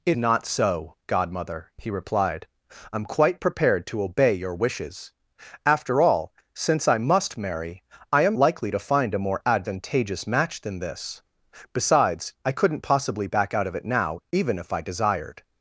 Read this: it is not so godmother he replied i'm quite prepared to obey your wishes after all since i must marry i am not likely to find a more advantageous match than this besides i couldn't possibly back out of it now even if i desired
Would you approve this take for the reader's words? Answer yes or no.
no